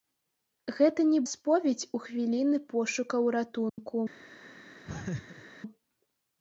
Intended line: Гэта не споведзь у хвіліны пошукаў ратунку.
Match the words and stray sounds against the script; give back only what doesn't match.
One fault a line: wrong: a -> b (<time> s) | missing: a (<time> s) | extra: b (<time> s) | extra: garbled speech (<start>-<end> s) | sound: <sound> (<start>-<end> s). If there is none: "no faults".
sound: dropout (3.7-3.8 s)
sound: laugh (4.9-5.5 s)